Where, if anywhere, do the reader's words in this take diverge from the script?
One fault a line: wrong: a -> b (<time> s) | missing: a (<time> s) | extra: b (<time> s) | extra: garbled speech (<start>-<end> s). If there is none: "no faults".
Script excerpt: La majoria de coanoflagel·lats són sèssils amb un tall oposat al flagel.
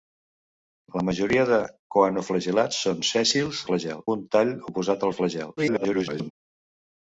wrong: amb -> flagel (3.7 s)
extra: garbled speech (5.6-6.3 s)